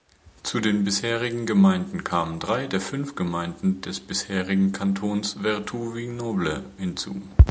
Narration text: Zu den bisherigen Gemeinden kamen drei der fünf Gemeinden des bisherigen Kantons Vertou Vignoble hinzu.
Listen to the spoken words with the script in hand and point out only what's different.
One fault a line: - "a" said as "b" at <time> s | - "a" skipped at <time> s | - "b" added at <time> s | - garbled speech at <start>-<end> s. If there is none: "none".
none